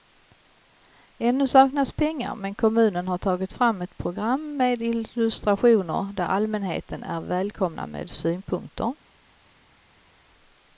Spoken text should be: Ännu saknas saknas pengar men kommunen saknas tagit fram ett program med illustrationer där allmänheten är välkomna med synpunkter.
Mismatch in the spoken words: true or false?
true